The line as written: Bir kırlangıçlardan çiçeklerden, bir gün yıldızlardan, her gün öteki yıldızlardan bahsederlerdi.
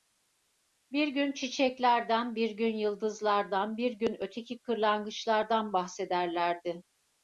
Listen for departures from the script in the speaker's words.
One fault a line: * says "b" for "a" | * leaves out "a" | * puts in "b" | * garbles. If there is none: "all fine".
* says "gün" for "kırlangıçlardan"
* says "bir" for "her"
* says "kırlangıçlardan" for "yıldızlardan"